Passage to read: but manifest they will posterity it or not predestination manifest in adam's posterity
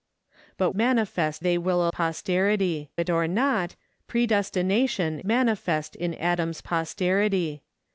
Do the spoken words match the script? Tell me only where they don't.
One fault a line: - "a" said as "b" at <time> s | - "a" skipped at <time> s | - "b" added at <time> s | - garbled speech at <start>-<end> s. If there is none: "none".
none